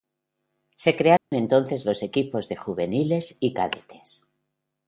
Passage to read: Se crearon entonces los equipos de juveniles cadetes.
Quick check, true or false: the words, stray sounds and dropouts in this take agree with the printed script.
false